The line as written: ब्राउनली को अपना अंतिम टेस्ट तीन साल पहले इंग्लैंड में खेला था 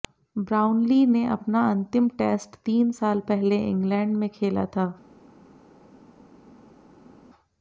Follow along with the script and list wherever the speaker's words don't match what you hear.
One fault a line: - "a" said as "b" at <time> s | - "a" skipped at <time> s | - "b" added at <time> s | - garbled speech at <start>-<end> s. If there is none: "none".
- "को" said as "ने" at 1.1 s